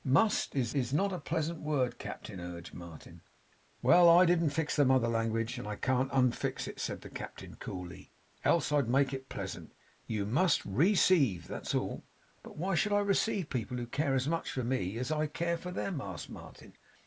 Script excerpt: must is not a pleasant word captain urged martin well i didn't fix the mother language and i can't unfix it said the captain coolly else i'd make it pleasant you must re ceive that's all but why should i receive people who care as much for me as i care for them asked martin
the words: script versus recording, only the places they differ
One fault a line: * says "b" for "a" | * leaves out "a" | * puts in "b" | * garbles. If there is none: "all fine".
* puts in "is"